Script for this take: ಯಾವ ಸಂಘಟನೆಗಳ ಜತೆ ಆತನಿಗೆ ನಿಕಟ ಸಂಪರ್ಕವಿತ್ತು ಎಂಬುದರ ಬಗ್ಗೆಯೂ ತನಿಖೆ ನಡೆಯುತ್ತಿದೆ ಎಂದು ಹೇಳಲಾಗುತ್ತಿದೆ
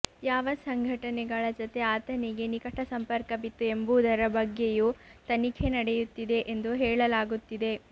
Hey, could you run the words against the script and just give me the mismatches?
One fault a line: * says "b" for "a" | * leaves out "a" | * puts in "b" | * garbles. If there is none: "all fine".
all fine